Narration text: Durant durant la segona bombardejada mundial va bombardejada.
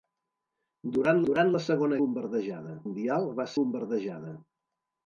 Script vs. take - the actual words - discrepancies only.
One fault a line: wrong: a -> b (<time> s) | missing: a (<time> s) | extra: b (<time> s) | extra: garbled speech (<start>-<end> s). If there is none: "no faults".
no faults